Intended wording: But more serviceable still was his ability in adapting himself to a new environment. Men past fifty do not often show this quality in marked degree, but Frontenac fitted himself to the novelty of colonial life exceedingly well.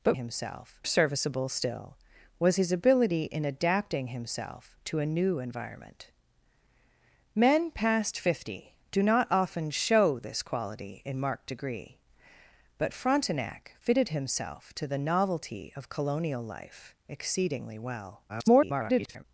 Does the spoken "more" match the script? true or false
false